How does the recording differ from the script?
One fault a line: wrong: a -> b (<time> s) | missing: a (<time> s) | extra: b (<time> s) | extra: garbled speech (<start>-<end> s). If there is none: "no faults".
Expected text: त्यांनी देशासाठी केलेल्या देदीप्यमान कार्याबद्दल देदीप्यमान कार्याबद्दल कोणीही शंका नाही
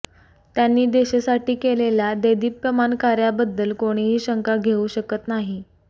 wrong: देदीप्यमान कार्याबद्दल कोणीही शंका -> कोणीही शंका घेऊ शकत (3.7 s)